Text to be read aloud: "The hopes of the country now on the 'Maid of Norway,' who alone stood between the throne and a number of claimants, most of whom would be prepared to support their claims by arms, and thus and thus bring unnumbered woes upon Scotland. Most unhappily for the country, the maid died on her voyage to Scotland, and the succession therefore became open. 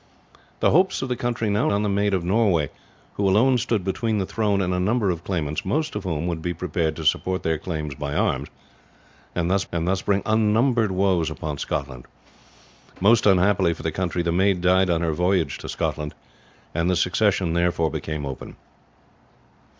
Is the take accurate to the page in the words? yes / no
yes